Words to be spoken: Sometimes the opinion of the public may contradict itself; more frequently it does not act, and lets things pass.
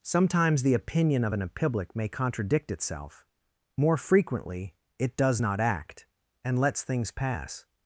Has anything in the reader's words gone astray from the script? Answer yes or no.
yes